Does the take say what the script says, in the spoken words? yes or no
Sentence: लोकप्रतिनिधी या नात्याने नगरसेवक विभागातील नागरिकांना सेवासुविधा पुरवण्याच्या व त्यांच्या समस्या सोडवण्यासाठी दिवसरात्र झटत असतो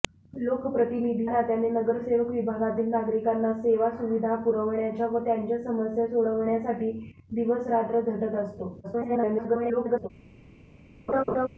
no